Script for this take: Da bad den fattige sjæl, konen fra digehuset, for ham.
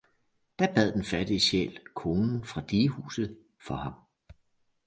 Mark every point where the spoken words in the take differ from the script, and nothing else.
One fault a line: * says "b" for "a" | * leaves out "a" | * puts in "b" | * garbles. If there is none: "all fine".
all fine